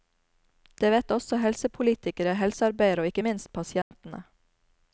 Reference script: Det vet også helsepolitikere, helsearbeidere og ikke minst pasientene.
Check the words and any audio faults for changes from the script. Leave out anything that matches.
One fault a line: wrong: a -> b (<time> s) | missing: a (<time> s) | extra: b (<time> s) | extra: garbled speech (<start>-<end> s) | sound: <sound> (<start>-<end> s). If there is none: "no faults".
sound: dropout (3.8-3.9 s)